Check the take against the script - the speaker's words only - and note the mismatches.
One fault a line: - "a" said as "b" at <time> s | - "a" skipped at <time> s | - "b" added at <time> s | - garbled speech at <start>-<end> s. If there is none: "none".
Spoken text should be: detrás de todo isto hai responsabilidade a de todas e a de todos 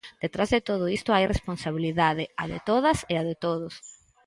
none